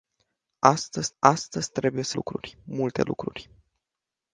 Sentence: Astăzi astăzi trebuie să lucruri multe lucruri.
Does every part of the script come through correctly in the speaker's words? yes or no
yes